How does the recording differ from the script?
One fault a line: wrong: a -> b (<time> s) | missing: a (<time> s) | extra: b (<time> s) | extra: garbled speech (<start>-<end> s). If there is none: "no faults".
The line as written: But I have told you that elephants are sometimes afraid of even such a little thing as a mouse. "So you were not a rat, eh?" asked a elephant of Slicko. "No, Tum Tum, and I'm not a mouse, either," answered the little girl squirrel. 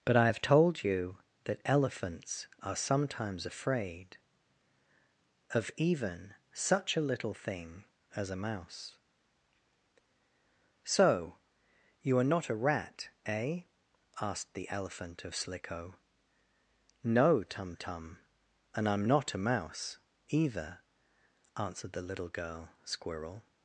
wrong: were -> are (12.2 s)
wrong: a -> the (14.5 s)